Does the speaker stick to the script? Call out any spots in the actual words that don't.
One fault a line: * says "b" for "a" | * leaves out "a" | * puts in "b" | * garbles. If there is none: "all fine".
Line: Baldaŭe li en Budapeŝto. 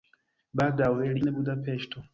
all fine